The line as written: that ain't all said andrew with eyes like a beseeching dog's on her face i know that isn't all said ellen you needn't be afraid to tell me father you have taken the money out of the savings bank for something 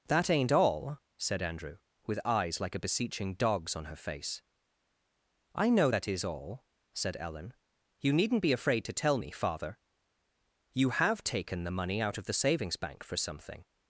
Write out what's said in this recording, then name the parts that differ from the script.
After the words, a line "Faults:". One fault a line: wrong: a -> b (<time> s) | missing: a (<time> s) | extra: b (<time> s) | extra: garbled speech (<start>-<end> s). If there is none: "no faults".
that ain't all said andrew with eyes like a beseeching dog's on her face i know that is all said ellen you needn't be afraid to tell me father you have taken the money out of the savings bank for something
Faults:
wrong: isn't -> is (6.1 s)